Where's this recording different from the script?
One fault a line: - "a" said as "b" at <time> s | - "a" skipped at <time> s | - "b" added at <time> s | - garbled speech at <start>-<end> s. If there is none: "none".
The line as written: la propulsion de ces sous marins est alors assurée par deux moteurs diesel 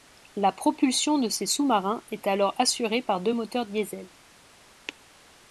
none